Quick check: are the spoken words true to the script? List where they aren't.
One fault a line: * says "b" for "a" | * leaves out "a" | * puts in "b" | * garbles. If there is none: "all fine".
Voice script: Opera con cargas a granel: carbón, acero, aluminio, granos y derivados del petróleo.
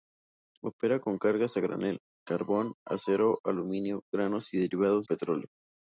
* leaves out "del"